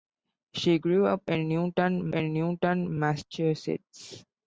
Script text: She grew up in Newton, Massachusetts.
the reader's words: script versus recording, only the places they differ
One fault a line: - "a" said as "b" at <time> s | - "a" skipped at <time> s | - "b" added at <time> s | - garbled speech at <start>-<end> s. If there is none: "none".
- "in Newton" added at 2.1 s